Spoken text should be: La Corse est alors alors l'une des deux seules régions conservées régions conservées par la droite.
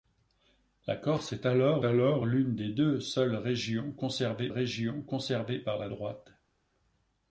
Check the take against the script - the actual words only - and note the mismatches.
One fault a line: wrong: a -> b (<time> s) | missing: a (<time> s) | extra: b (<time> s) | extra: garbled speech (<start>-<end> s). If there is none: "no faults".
no faults